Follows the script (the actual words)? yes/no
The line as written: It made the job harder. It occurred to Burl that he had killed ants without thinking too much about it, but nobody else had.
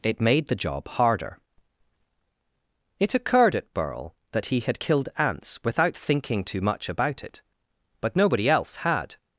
no